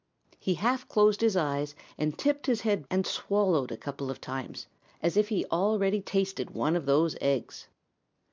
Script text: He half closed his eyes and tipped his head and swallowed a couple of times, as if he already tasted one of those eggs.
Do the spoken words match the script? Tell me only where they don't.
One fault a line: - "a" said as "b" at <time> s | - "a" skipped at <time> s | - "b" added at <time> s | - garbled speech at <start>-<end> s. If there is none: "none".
none